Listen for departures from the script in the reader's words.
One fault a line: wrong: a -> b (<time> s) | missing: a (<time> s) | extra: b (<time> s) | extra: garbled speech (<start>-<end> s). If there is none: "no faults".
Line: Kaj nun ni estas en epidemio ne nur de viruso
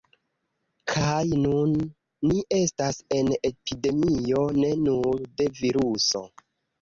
no faults